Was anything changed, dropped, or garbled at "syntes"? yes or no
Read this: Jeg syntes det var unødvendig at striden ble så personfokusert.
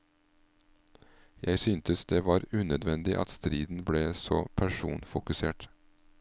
no